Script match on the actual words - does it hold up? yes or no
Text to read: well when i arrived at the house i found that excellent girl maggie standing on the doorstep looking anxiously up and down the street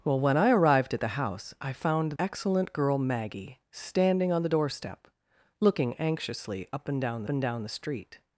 no